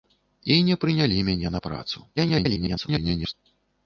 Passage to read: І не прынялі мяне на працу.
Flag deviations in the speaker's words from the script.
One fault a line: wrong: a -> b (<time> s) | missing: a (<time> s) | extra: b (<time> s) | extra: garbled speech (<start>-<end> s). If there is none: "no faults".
extra: garbled speech (2.2-3.3 s)